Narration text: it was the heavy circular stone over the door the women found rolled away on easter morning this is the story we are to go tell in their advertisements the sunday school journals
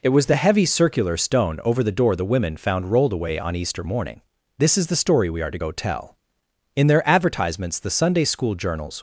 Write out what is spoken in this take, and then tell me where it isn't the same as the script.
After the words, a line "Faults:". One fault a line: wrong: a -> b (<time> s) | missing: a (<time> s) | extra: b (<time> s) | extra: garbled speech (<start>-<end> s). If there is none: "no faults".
it was the heavy circular stone over the door the women found rolled away on easter morning this is the story we are to go tell in their advertisements the sunday school journals
Faults:
no faults